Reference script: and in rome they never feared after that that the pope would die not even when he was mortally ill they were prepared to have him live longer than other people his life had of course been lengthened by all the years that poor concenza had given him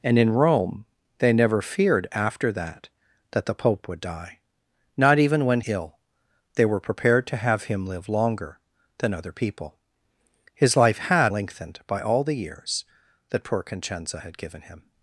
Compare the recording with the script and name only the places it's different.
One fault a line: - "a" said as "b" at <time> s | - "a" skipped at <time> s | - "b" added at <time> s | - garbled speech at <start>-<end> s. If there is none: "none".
- "he was mortally" skipped at 5.6 s
- "of course been" skipped at 11.3 s